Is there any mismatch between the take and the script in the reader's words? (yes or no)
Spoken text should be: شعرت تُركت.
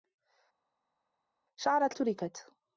no